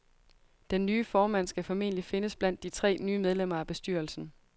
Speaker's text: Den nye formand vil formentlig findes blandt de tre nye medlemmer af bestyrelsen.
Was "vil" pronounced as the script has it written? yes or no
no